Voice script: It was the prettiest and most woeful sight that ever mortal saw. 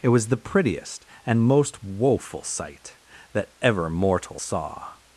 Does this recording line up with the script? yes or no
yes